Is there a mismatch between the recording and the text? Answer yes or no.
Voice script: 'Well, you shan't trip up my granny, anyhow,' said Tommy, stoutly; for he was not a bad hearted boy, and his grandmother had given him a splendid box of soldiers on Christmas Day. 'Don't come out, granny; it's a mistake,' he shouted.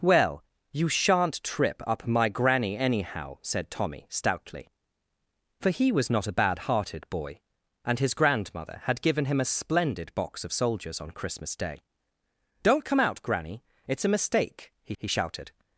yes